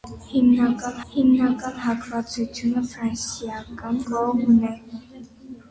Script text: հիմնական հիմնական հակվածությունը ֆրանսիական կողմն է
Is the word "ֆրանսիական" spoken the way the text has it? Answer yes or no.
yes